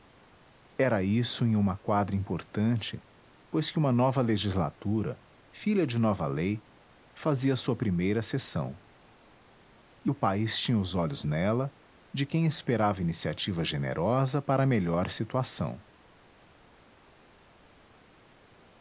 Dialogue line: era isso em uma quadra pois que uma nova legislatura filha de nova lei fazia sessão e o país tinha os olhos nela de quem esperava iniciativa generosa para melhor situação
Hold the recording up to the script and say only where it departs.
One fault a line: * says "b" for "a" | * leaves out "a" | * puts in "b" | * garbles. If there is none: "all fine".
* puts in "importante"
* puts in "sua primeira"